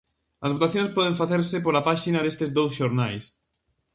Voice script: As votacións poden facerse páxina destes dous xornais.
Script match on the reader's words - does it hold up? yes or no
no